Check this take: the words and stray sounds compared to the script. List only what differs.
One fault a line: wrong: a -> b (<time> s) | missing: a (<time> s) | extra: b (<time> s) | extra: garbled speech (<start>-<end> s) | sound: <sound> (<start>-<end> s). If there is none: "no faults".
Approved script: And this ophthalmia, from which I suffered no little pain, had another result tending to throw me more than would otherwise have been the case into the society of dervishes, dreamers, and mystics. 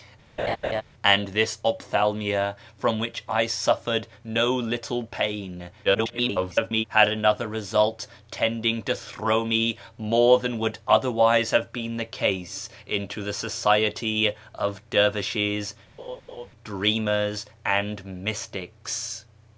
sound: laugh (0.4-0.8 s)
extra: garbled speech (5.8-6.8 s)
sound: laugh (16.0-16.5 s)